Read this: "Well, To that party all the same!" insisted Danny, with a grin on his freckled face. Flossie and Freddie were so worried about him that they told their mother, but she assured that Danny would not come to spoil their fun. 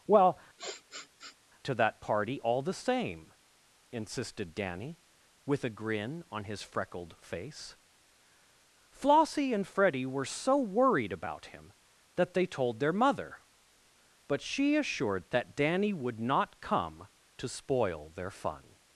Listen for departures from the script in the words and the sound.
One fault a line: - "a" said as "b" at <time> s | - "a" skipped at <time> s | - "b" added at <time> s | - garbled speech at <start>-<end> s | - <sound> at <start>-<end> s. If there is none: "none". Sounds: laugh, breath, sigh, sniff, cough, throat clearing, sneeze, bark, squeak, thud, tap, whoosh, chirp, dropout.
- sniff at 0.6-1.4 s